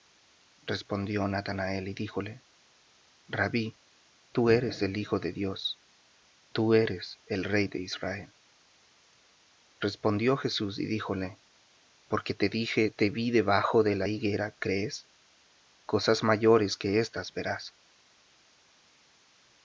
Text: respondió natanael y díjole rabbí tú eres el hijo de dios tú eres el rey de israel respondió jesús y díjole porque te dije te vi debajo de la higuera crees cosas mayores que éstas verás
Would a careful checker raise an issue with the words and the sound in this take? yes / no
no